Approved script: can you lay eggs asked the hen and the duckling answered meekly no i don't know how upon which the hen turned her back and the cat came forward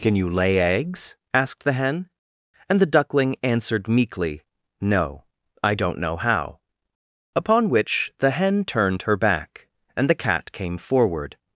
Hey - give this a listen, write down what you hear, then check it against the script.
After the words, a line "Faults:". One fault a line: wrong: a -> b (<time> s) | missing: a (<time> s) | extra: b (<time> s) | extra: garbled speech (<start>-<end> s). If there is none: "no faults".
can you lay eggs asked the hen and the duckling answered meekly no i don't know how upon which the hen turned her back and the cat came forward
Faults:
no faults